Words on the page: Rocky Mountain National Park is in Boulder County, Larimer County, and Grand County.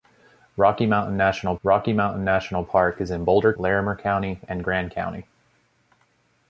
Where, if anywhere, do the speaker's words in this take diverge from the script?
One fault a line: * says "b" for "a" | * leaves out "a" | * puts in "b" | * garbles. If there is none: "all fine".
* puts in "rocky Mountain National"
* leaves out "County"